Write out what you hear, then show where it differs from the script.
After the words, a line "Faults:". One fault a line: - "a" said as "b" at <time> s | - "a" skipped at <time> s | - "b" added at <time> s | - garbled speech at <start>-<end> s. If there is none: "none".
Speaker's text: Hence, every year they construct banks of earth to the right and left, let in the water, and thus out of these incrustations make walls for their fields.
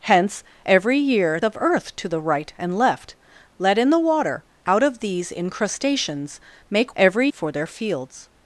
Hence, every year of earth to the right and left, let in the water, out of these incrustations make every for their fields.
Faults:
- "they construct banks" skipped at 1.4 s
- "and thus" skipped at 4.4 s
- "walls" said as "every" at 6.9 s